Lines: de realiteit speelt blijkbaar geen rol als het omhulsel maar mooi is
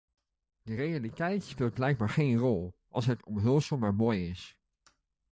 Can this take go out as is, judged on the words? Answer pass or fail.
pass